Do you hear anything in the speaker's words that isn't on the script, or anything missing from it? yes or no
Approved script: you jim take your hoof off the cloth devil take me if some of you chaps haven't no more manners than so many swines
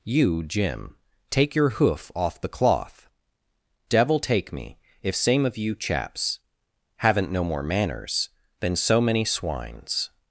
yes